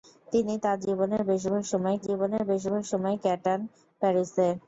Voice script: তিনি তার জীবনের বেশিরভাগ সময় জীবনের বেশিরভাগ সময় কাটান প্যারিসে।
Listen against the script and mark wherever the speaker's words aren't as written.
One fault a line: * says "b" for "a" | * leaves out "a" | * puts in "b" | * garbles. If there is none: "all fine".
all fine